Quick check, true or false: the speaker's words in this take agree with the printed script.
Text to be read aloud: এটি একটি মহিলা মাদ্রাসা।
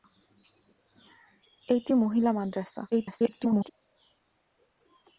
false